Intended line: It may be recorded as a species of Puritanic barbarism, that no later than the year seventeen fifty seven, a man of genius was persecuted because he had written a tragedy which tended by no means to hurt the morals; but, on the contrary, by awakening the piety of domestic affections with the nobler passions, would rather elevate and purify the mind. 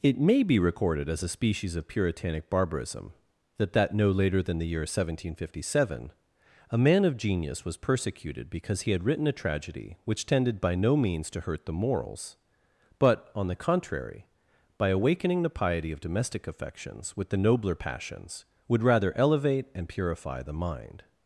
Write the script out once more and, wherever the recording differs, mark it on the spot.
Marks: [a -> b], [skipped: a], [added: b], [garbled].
It may be recorded as a species of Puritanic barbarism, that [added: that] no later than the year seventeen fifty seven, a man of genius was persecuted because he had written a tragedy which tended by no means to hurt the morals; but, on the contrary, by awakening the piety of domestic affections with the nobler passions, would rather elevate and purify the mind.